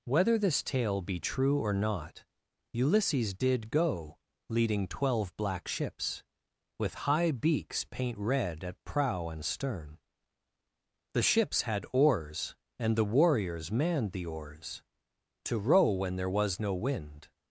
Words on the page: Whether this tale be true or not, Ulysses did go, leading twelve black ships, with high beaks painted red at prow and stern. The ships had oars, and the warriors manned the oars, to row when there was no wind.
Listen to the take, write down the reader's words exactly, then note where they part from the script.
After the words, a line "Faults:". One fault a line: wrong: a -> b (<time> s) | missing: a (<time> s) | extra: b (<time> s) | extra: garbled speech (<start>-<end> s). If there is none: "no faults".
Whether this tale be true or not, Ulysses did go, leading twelve black ships, with high beaks paint red at prow and stern. The ships had oars, and the warriors manned the oars, to row when there was no wind.
Faults:
wrong: painted -> paint (7.8 s)